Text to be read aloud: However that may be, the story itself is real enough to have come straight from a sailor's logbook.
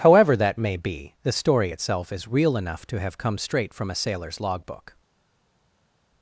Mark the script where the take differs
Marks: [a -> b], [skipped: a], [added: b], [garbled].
However that may be, the story itself is real enough to have come straight from a sailor's logbook.